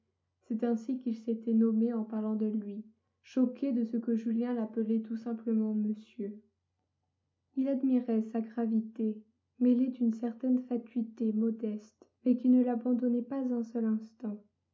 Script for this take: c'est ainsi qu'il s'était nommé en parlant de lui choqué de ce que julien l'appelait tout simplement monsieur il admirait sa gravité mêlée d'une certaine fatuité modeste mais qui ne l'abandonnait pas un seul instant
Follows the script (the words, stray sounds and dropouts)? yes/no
yes